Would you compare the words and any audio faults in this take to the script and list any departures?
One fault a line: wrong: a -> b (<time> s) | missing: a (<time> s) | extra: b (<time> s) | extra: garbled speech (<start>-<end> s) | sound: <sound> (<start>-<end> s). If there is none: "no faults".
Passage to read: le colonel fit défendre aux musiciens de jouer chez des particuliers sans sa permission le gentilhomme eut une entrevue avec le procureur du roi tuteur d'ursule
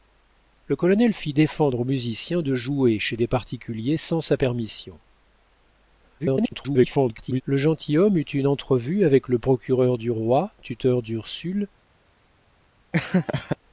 extra: garbled speech (6.2-7.4 s)
sound: laugh (12.9-13.6 s)